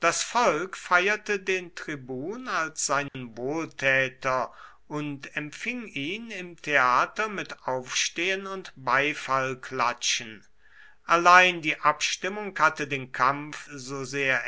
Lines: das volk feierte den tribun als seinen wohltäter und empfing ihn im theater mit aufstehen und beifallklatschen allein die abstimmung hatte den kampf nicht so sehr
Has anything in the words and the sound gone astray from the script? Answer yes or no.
yes